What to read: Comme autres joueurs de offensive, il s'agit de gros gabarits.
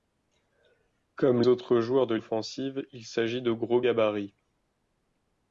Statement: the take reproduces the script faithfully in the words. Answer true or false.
true